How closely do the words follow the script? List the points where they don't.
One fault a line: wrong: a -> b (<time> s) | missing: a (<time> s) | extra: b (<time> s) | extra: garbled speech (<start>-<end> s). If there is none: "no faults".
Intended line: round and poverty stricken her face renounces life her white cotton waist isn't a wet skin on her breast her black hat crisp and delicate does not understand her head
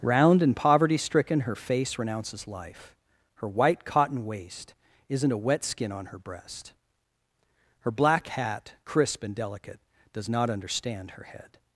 no faults